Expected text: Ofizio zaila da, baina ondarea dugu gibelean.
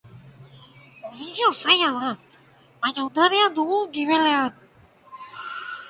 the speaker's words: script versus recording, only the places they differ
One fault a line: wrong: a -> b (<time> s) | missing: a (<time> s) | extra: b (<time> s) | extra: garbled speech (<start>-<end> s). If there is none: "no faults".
no faults